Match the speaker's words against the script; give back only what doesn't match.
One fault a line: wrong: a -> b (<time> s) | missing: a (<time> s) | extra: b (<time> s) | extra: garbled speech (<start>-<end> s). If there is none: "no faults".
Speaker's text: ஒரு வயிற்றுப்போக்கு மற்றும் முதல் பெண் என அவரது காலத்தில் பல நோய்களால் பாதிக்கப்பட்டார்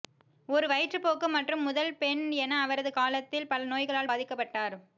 no faults